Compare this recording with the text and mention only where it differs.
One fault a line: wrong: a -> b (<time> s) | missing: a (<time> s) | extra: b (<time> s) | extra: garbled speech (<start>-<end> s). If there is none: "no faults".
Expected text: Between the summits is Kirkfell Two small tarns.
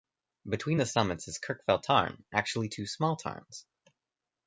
extra: Tarn actually (1.8 s)